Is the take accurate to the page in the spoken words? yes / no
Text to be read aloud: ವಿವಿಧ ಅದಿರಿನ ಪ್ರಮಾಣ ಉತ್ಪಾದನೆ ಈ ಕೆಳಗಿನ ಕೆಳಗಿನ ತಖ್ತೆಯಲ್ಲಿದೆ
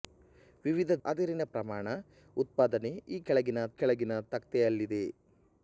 yes